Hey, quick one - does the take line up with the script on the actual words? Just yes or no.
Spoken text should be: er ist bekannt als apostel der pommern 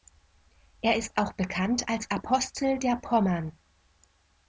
no